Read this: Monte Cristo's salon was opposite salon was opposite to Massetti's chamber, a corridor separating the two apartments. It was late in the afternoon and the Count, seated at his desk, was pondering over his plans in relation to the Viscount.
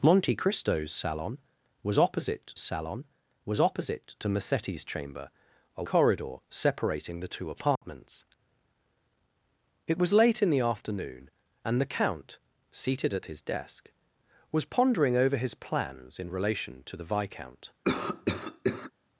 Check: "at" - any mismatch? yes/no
no